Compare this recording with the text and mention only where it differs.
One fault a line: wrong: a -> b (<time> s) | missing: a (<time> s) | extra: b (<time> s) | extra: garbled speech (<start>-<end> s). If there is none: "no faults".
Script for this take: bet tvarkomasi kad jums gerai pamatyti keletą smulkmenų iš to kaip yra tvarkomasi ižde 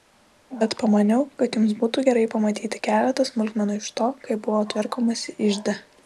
wrong: tvarkomasi -> pamaniau (0.8 s)
extra: būtų (1.8 s)
wrong: yra -> buvo (4.5 s)